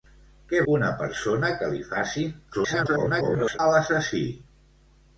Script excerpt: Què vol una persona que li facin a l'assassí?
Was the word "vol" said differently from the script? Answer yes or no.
yes